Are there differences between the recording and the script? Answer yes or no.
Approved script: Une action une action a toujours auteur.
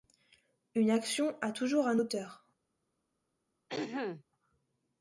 yes